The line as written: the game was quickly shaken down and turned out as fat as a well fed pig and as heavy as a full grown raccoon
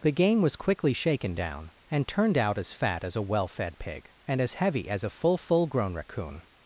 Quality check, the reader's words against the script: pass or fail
fail